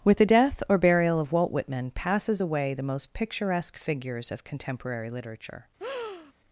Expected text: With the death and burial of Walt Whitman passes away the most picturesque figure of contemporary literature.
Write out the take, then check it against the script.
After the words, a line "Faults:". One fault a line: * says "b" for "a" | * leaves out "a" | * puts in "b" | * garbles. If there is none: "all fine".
With the death or burial of Walt Whitman passes away the most picturesque figures of contemporary literature.
Faults:
* says "or" for "and"
* says "figures" for "figure"